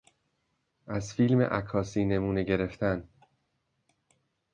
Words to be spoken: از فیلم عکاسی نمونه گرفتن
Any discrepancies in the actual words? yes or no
no